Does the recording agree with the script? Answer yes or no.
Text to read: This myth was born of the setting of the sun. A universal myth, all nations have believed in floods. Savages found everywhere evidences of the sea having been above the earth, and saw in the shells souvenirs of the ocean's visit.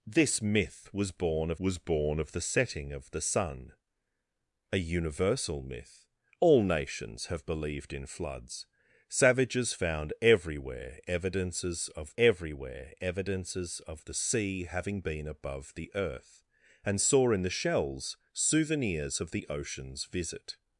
no